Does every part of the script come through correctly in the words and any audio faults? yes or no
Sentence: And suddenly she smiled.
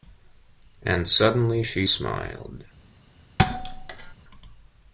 no